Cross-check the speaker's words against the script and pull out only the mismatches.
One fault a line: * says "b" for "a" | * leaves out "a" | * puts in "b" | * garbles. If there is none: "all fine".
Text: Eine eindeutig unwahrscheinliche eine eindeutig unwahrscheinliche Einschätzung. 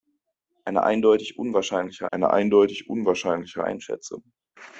all fine